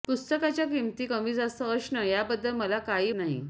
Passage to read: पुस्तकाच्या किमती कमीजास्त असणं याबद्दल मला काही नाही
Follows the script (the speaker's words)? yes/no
yes